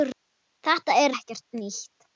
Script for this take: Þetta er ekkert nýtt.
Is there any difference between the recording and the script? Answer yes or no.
no